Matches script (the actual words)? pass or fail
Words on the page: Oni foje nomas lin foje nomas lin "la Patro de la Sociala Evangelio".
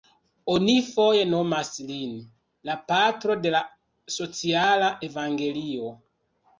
fail